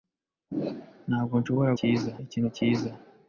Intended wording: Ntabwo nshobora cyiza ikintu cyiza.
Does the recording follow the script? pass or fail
pass